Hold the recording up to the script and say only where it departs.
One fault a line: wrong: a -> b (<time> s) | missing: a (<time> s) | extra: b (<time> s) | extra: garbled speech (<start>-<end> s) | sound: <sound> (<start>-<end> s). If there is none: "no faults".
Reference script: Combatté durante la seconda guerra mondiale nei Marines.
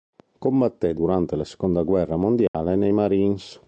sound: dropout (2.5-2.5 s)